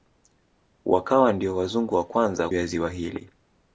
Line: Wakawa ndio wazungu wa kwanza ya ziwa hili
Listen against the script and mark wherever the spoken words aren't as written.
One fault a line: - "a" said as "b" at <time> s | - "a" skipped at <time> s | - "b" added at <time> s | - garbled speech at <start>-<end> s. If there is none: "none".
none